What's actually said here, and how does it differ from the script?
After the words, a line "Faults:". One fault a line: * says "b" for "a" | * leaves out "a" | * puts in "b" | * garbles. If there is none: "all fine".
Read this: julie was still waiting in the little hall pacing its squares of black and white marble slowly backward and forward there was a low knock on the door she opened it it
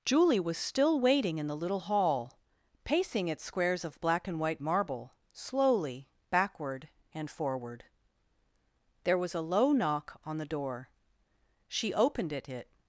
julie was still waiting in the little hall pacing its squares of black and white marble slowly backward and forward there was a low knock on the door she opened it it
Faults:
all fine